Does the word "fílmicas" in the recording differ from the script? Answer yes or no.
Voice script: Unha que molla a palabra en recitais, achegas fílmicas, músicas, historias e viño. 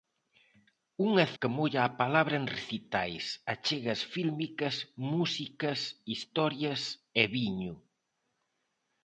no